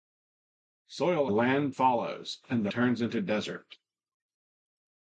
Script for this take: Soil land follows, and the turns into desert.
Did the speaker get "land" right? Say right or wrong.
right